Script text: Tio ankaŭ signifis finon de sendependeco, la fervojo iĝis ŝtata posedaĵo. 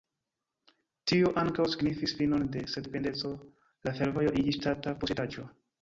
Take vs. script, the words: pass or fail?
pass